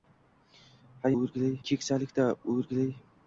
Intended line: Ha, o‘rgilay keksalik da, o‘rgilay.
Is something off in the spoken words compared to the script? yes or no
no